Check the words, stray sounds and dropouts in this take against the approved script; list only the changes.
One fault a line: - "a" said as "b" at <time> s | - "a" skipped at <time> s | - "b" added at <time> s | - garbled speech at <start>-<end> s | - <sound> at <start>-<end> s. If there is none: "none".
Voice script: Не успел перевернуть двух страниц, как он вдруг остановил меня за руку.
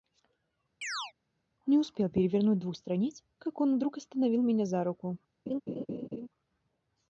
- chirp at 0.8-1.1 s
- laugh at 5.5-6.3 s